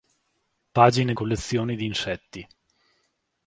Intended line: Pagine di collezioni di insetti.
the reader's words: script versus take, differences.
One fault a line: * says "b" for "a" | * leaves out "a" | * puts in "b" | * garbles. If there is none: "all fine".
* leaves out "di"